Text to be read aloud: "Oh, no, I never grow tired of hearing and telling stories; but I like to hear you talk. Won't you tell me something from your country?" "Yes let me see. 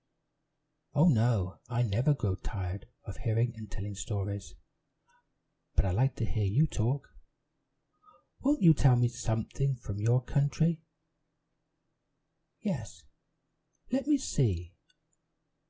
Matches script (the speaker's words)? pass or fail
pass